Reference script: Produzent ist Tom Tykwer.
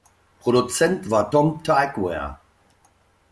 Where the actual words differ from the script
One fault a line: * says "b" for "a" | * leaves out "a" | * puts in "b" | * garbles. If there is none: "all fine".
* says "war" for "ist"